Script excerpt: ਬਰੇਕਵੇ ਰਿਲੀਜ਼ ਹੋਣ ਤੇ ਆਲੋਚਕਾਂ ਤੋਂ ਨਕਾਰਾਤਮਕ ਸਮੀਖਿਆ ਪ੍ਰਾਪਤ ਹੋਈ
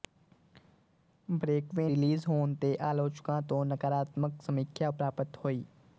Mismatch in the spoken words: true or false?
false